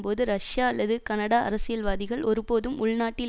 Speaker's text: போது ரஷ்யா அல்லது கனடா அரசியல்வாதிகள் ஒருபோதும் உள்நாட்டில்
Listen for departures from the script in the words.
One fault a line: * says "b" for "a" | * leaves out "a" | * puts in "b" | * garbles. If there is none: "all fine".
all fine